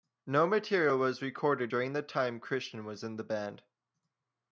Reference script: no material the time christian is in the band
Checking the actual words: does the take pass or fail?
fail